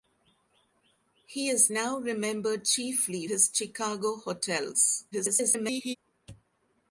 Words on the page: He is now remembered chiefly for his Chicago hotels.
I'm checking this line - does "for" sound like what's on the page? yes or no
no